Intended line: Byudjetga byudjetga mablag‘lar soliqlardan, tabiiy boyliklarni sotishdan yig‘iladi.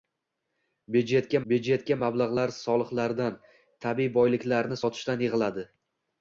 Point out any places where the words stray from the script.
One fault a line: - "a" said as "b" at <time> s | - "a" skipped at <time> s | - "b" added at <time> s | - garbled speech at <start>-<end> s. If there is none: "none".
none